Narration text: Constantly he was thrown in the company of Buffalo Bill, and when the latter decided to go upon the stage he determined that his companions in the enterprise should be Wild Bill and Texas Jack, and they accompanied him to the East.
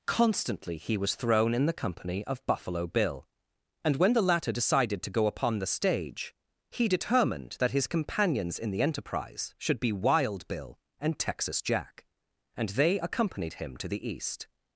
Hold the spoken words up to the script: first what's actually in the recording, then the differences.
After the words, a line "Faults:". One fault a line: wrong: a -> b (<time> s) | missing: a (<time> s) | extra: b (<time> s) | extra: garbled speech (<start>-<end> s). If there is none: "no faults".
Constantly he was thrown in the company of Buffalo Bill, and when the latter decided to go upon the stage he determined that his companions in the enterprise should be Wild Bill and Texas Jack, and they accompanied him to the East.
Faults:
no faults